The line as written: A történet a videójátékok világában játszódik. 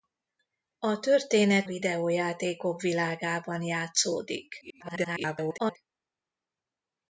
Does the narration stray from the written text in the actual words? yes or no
yes